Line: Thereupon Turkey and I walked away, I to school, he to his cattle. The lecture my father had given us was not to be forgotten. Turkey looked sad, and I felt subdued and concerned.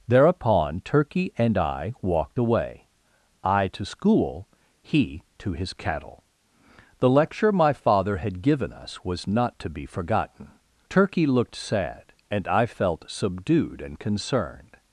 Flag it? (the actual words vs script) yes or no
no